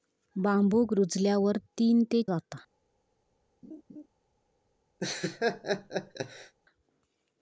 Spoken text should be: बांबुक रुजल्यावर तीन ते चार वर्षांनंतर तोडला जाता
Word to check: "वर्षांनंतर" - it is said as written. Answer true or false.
false